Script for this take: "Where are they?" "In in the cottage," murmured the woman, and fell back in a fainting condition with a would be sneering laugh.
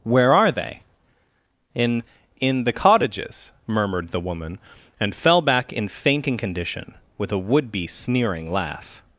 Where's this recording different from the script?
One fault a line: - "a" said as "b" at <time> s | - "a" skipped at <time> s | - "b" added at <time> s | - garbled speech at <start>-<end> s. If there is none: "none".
- "cottage" said as "cottages" at 2.7 s
- "a" skipped at 5.9 s